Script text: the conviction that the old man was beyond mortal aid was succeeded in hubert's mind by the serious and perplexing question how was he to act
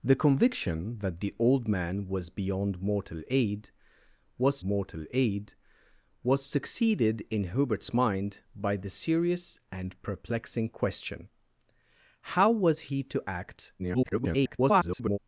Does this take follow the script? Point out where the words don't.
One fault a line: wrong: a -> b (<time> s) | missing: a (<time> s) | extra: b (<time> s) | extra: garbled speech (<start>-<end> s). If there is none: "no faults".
extra: mortal aid was (4.6 s)
extra: garbled speech (13.8-15.2 s)